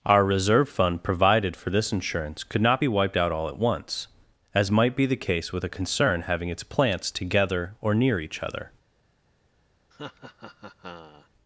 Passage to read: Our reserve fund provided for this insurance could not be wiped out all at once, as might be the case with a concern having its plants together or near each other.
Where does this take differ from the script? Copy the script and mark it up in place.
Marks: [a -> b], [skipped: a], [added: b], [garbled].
Our reserve fund provided for this insurance could not be wiped out all at once, as might be the case with a concern having its plants together or near each other.